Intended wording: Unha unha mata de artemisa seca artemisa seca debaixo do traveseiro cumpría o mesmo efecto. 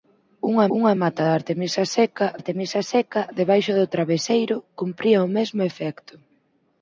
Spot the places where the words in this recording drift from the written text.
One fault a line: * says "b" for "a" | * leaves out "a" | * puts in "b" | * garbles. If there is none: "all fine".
all fine